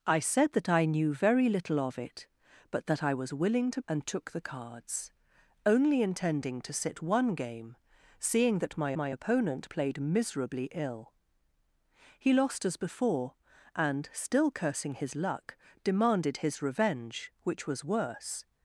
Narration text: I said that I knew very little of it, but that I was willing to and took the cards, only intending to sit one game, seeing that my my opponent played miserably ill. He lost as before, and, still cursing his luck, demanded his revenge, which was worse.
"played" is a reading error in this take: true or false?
false